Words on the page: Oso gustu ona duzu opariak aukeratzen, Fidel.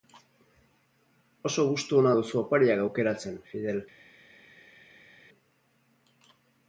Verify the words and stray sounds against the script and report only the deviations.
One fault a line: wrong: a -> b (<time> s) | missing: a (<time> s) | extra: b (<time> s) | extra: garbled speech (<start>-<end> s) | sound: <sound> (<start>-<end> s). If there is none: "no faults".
no faults